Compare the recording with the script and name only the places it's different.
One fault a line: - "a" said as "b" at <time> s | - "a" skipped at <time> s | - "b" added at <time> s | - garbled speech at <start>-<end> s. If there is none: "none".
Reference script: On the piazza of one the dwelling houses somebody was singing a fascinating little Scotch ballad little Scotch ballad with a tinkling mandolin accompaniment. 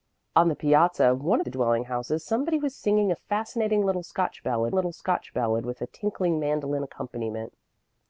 none